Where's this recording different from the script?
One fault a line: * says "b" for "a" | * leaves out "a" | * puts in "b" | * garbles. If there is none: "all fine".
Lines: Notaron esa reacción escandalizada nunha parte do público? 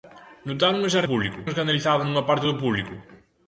* says "público" for "reacción"